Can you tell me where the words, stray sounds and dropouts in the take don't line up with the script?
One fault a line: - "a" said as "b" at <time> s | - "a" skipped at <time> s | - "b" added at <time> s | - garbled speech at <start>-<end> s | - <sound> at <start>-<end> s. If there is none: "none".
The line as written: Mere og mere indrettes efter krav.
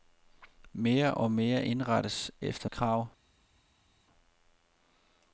none